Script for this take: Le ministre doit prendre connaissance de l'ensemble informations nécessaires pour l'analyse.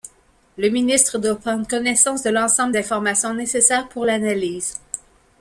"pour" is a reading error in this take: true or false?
false